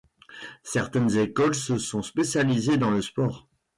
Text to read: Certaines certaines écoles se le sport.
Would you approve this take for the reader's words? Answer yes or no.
no